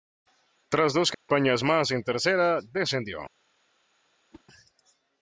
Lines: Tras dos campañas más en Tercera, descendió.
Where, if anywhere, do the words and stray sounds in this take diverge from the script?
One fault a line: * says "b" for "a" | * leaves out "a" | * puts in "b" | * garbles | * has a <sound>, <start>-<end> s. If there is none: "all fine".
* has a dropout, 1.1-1.3 s
* has a whoosh, 4.3-4.4 s